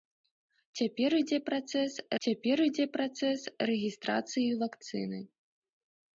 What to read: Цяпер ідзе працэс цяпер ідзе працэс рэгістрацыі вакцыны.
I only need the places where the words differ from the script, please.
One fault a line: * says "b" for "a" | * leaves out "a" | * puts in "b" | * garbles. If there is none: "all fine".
all fine